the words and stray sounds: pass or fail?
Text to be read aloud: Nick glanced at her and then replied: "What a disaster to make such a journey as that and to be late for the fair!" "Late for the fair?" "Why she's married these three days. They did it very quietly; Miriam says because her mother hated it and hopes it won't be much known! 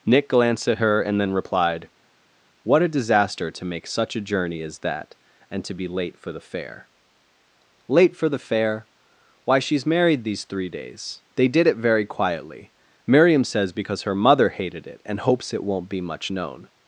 pass